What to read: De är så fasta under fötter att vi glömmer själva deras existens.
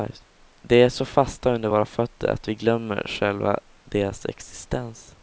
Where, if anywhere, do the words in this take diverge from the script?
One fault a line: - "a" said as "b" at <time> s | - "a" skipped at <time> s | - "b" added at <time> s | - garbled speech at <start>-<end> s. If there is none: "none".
- "våra" added at 1.7 s